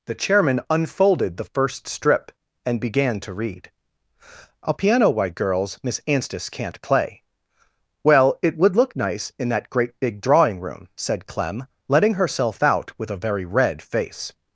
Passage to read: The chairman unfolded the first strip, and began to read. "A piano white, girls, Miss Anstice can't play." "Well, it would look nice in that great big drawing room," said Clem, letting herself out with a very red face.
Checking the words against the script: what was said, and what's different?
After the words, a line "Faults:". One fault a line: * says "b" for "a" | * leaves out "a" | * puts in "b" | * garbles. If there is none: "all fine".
The chairman unfolded the first strip, and began to read. "A piano white, girls, Miss Anstice can't play." "Well, it would look nice in that great big drawing room," said Clem, letting herself out with a very red face.
Faults:
all fine